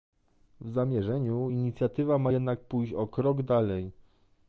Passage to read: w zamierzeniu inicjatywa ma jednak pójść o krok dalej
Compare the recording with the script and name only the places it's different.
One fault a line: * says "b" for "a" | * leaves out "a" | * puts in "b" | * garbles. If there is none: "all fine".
all fine